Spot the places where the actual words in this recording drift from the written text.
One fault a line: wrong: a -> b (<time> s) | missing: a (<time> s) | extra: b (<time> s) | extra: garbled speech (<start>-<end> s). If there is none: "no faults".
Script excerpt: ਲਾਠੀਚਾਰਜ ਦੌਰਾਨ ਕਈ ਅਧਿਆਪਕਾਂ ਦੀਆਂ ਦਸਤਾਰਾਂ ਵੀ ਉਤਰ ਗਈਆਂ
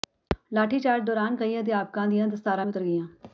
no faults